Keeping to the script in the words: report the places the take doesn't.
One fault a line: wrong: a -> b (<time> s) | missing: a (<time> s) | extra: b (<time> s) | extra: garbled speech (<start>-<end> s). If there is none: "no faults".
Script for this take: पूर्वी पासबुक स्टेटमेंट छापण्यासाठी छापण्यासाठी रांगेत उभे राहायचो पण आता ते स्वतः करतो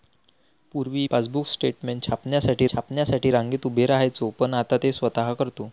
no faults